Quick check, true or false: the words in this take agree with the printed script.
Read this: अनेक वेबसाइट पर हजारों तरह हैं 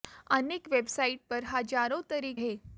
true